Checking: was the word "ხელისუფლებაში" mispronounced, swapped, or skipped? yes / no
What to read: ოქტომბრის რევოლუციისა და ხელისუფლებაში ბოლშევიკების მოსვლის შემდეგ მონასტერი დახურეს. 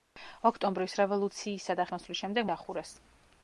yes